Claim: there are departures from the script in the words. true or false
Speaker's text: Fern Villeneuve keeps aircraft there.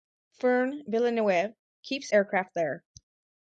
false